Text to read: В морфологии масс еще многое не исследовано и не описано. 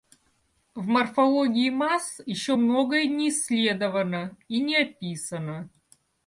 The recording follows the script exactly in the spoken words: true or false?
true